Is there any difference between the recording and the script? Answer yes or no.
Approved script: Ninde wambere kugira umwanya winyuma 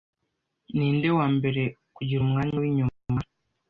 no